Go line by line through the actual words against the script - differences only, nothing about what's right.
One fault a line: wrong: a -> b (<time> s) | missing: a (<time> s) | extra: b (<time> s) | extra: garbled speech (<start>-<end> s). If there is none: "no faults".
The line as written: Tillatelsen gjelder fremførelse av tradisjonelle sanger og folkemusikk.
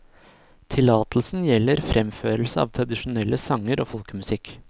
no faults